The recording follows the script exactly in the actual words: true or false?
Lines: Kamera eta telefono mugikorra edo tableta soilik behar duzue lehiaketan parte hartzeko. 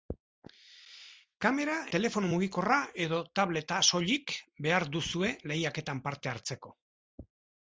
false